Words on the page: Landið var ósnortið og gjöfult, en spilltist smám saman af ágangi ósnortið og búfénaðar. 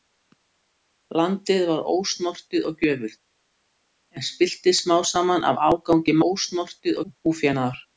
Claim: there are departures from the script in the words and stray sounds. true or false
false